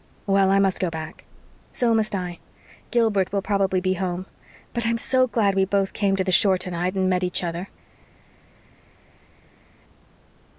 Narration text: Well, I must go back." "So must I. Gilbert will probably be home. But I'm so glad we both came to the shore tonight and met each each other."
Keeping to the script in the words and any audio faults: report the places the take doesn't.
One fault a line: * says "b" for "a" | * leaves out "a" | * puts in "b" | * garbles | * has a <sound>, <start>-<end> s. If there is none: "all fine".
* leaves out "each"